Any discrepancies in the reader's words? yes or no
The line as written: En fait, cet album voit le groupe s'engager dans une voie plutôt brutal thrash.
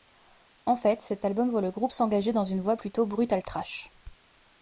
no